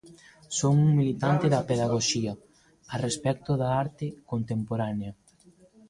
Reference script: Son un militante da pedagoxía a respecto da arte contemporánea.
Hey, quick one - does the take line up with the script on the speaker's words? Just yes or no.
yes